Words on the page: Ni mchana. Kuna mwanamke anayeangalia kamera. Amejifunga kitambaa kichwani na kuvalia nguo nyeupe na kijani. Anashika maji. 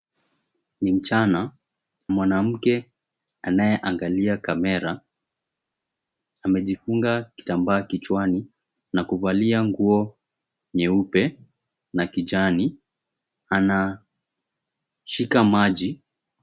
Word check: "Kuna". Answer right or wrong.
wrong